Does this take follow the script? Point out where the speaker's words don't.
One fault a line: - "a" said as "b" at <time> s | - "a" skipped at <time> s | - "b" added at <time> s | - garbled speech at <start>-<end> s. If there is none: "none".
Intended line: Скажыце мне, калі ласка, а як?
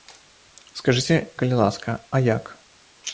- "мне" skipped at 1.2 s